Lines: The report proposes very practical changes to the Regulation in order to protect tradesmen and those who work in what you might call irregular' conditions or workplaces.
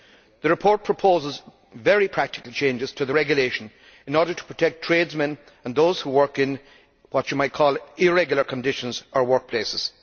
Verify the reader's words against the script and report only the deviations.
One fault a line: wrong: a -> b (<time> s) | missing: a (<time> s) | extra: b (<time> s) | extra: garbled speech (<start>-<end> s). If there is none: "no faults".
no faults